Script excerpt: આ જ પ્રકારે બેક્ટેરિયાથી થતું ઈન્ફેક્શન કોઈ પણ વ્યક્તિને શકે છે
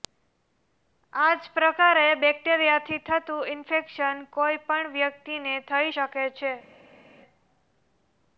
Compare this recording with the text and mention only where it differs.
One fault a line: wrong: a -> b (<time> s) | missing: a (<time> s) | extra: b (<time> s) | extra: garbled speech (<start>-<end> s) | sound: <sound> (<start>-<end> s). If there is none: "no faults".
extra: થઈ (5.7 s)